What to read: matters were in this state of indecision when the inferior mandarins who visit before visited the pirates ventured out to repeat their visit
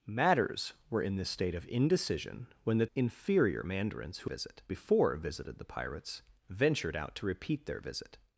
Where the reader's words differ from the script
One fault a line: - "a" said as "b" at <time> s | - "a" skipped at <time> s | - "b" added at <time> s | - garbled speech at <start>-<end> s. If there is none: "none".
none